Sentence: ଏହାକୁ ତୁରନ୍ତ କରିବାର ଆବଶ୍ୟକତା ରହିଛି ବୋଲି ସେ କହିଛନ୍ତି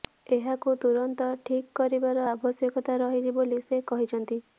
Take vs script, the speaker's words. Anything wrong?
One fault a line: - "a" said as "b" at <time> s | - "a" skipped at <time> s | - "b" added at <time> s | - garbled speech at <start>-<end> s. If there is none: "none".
- "ଠିକ୍" added at 1.5 s